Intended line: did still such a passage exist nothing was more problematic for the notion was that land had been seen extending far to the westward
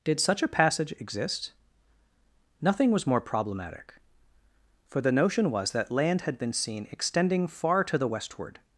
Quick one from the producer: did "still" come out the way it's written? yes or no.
no